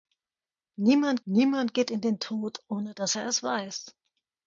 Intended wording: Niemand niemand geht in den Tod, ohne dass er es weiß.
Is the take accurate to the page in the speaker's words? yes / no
yes